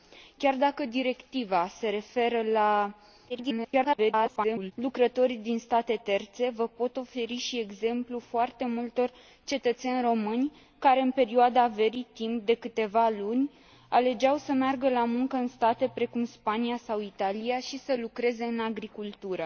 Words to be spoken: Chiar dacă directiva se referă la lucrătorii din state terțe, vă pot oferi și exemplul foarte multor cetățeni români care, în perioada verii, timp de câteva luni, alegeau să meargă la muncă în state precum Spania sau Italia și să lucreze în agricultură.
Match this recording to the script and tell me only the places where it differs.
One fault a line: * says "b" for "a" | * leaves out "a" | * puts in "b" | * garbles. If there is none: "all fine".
* garbles